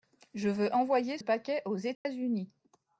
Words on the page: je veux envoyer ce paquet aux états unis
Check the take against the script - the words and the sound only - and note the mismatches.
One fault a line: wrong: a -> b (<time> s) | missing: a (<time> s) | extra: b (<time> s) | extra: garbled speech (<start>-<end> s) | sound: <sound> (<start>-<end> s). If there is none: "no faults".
missing: ce (1.2 s)
sound: dropout (1.9-2.1 s)